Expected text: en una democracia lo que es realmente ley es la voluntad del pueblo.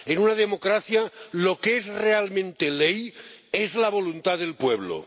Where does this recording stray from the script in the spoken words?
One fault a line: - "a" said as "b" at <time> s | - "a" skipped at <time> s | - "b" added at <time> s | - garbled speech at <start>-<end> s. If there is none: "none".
none